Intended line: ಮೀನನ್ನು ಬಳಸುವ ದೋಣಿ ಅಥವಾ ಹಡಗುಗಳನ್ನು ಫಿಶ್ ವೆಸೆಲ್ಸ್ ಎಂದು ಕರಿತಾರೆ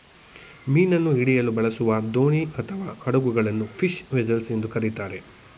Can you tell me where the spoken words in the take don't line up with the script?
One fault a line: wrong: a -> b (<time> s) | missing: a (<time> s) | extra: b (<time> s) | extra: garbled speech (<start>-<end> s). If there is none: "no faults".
extra: ಹಿಡಿಯಲು (1.1 s)